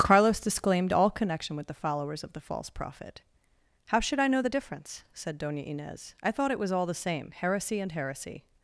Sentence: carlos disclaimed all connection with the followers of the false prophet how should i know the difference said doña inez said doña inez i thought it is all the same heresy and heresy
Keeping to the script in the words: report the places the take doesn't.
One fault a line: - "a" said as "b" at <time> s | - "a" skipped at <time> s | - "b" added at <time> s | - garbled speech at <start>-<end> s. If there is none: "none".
- "said doña inez" skipped at 6.2 s
- "is" said as "was" at 6.6 s